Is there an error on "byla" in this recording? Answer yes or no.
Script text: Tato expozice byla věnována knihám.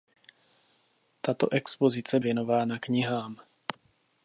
yes